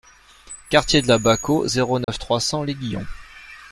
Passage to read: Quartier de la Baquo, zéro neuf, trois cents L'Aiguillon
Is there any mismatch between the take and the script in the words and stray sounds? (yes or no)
yes